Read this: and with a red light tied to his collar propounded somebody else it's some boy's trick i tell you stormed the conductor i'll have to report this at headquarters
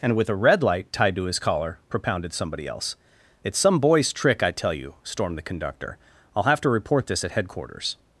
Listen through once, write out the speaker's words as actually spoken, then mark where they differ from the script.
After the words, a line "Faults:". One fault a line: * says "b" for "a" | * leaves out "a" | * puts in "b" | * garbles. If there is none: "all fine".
and with a red light tied to his collar propounded somebody else it's some boy's trick i tell you stormed the conductor i'll have to report this at headquarters
Faults:
all fine